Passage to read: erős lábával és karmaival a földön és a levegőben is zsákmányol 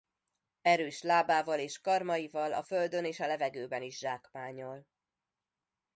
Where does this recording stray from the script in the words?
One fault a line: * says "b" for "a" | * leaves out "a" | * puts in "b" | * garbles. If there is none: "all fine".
all fine